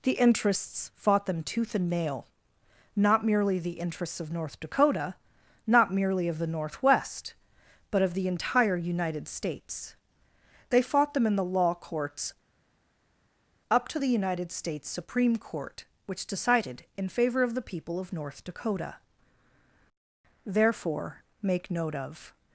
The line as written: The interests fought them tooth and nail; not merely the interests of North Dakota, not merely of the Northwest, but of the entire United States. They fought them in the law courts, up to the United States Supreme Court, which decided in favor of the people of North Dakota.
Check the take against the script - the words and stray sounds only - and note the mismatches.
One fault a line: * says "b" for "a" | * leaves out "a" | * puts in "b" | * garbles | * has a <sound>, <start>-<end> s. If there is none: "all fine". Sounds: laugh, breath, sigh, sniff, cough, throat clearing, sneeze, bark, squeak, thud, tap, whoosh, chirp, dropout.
* puts in "Therefore make note of"